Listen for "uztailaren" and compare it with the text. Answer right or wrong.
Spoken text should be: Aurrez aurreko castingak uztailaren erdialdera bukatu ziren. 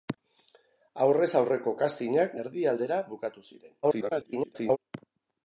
wrong